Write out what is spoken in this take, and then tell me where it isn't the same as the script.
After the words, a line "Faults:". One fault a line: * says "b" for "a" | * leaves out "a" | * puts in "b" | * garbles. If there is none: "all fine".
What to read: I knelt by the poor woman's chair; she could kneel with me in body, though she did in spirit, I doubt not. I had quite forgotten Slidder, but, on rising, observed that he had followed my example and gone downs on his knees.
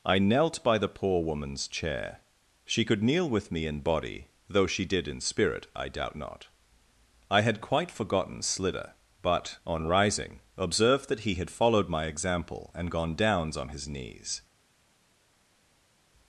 I knelt by the poor woman's chair; she could kneel with me in body, though she did in spirit, I doubt not. I had quite forgotten Slidder, but, on rising, observed that he had followed my example and gone downs on his knees.
Faults:
all fine